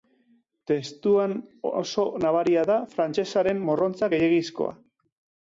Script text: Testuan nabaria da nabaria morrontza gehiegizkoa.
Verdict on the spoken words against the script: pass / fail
fail